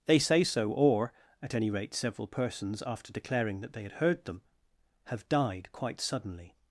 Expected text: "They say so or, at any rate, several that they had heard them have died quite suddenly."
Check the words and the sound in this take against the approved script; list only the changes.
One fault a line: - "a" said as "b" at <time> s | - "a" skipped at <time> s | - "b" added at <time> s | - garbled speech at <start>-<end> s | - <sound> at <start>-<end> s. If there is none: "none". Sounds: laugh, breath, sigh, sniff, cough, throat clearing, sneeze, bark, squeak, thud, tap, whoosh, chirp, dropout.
- "persons after declaring" added at 2.3 s